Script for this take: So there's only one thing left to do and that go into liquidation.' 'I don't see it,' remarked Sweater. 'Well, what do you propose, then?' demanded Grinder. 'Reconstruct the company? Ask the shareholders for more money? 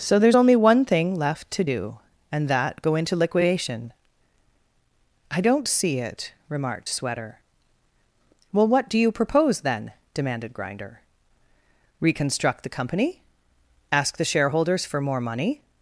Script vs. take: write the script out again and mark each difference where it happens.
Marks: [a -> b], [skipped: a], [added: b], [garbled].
So there's only one thing left to do and that go into liquidation.' 'I don't see it,' remarked Sweater. 'Well, what do you propose, then?' demanded Grinder. 'Reconstruct the company? Ask the shareholders for more money?